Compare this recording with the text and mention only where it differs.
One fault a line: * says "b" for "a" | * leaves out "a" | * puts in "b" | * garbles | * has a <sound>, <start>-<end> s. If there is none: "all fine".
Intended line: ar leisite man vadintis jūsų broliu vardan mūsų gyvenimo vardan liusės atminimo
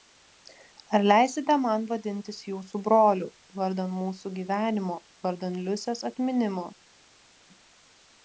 all fine